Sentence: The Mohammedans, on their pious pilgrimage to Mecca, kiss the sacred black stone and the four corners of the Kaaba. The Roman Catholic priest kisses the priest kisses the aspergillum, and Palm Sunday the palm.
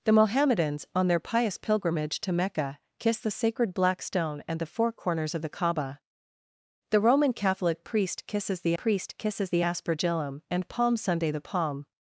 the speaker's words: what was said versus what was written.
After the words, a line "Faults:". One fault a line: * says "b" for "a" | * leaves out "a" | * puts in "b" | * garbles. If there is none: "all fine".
The Mohammedans, on their pious pilgrimage to Mecca, kiss the sacred black stone and the four corners of the Kaaba. The Roman Catholic priest kisses the priest kisses the aspergillum, and Palm Sunday the palm.
Faults:
all fine